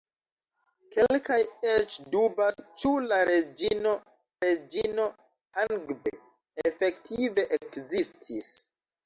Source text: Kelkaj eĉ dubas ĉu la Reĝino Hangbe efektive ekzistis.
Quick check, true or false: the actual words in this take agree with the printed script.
false